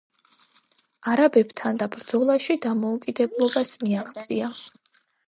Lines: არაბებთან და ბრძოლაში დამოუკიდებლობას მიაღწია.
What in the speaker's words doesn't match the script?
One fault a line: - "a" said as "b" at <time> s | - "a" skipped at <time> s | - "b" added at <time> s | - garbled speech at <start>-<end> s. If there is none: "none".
none